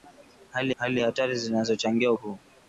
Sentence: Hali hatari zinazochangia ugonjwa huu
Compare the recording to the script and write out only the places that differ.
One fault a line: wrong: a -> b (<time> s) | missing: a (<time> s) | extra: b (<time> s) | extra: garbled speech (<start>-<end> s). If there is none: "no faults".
extra: hali (0.7 s)
missing: ugonjwa (2.1 s)